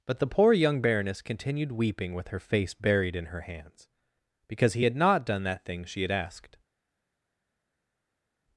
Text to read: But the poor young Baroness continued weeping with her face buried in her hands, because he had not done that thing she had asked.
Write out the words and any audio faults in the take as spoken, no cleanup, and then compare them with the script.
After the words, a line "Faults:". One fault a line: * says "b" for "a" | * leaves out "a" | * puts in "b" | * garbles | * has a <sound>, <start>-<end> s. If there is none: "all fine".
But the poor young Baroness continued weeping with her face buried in her hands, because he had not done that thing she had asked.
Faults:
all fine